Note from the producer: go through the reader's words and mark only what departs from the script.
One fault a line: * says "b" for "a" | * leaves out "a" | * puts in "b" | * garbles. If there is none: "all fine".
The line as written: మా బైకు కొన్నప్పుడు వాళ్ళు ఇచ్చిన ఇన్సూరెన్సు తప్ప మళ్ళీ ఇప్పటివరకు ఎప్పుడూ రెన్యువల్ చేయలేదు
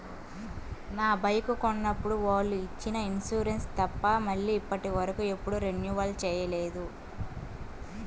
* says "నా" for "మా"